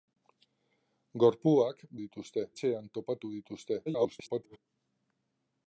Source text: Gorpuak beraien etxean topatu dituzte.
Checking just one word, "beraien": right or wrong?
wrong